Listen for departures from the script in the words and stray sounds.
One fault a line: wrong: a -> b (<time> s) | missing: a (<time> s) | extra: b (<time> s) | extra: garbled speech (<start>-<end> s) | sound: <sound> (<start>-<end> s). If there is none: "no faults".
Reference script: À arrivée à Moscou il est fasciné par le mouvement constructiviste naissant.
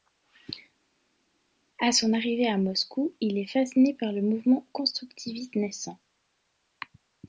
extra: son (1.9 s)